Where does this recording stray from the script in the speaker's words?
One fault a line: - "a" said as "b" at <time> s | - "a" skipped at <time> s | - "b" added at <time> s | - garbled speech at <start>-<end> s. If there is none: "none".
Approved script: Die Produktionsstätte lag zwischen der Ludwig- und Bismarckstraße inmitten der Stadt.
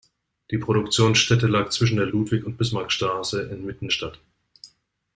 - "der" skipped at 3.9 s